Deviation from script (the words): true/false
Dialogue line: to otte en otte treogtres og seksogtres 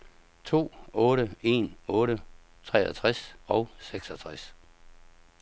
false